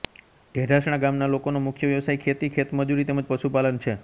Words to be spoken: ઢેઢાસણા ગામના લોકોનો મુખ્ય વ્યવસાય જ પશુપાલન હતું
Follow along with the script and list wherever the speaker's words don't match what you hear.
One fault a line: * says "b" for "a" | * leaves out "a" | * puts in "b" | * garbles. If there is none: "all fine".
* puts in "ખેતી ખેતમજૂરી તેમ"
* says "છે" for "હતું"